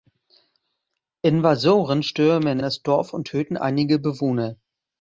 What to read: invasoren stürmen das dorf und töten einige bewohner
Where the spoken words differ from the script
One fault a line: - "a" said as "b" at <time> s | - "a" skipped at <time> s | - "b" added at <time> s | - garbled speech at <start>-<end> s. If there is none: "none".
none